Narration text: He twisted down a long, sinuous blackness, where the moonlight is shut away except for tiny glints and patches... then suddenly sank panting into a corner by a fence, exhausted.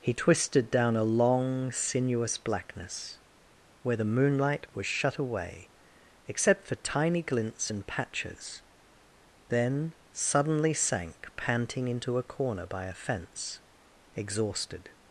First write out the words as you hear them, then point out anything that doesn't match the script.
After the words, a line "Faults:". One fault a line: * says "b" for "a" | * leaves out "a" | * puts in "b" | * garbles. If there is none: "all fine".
He twisted down a long, sinuous blackness, where the moonlight was shut away except for tiny glints and patches... then suddenly sank panting into a corner by a fence, exhausted.
Faults:
* says "was" for "is"